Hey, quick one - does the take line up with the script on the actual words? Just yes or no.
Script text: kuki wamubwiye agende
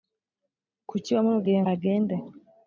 yes